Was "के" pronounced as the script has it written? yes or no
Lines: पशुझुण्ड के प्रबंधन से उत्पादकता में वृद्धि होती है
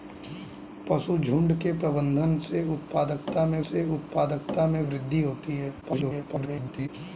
yes